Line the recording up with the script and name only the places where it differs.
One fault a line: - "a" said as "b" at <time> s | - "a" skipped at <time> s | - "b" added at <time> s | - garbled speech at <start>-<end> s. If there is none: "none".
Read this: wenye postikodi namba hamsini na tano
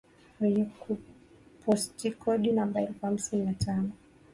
- "elfu" added at 2.8 s